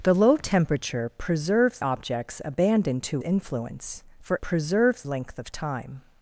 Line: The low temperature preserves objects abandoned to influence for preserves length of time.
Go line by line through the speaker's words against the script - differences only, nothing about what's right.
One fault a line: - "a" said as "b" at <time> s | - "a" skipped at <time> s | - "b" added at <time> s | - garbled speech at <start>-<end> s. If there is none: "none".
none